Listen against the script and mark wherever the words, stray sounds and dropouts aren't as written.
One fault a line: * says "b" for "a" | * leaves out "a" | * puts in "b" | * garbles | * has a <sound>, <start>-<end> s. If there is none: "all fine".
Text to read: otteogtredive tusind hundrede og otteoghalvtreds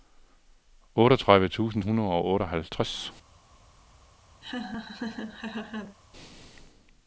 * has a laugh, 4.4-6.0 s